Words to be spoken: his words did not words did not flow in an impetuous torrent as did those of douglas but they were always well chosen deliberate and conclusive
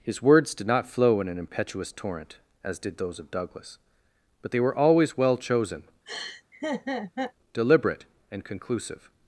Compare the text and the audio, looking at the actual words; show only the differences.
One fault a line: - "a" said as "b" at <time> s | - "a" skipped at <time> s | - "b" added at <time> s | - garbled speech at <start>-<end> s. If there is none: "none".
- "words did not" skipped at 0.9 s